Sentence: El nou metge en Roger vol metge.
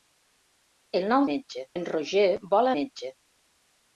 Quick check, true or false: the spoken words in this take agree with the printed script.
true